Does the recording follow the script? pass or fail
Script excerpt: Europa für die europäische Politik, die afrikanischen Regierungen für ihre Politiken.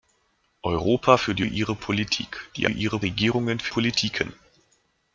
fail